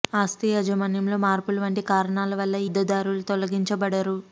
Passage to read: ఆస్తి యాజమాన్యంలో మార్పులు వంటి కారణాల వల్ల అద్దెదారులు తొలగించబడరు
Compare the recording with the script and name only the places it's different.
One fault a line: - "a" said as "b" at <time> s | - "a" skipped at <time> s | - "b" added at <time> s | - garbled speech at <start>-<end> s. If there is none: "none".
none